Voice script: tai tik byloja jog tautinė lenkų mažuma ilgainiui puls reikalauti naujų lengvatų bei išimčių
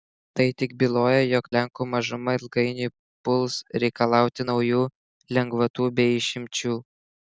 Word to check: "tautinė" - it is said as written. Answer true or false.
false